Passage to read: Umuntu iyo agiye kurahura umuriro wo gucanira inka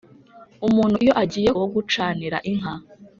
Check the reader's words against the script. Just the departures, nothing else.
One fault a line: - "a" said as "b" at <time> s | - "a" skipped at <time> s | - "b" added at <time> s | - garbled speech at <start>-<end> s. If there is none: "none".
- "kurahura umuriro" skipped at 1.5 s